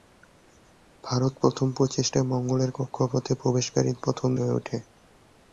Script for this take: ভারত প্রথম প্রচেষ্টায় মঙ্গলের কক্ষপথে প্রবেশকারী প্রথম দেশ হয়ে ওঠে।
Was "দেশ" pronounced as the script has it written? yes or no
no